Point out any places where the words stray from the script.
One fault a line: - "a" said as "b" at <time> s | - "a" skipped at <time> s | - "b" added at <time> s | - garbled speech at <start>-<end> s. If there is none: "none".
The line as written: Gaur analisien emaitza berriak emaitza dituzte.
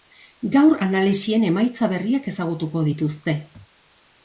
- "emaitza" said as "ezagutuko" at 2.3 s